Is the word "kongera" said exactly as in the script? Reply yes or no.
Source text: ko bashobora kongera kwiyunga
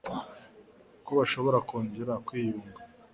yes